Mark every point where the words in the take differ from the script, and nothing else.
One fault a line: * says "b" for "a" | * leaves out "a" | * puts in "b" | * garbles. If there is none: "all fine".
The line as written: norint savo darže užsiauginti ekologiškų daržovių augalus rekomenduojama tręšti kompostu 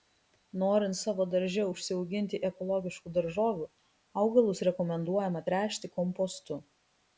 all fine